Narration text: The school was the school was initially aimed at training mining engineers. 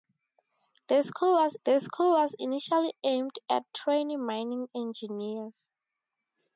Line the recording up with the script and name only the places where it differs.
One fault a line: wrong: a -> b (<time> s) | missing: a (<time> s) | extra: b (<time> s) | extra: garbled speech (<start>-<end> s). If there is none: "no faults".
no faults